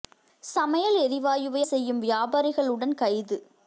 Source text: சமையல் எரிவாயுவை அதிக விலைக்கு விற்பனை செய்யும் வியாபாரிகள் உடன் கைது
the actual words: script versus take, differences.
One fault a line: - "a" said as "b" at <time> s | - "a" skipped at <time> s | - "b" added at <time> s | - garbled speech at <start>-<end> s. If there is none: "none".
- "அதிக விலைக்கு விற்பனை" skipped at 1.6 s